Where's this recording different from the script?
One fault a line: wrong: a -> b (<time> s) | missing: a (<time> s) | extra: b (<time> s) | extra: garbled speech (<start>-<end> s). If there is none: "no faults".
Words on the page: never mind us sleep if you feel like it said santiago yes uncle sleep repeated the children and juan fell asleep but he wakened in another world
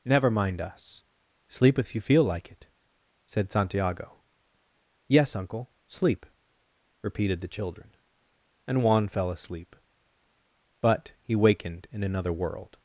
no faults